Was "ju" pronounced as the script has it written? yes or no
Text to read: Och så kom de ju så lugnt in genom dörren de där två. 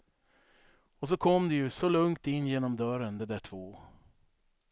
yes